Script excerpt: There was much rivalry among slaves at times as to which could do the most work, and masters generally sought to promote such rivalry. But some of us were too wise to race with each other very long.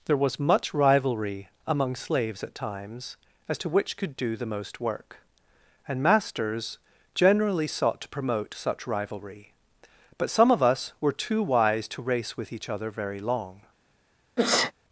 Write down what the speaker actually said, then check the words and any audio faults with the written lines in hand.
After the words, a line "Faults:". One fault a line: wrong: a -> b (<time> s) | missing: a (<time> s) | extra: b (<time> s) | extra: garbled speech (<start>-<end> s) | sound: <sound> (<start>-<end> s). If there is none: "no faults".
There was much rivalry among slaves at times as to which could do the most work, and masters generally sought to promote such rivalry. But some of us were too wise to race with each other very long.
Faults:
sound: sneeze (14.4-14.7 s)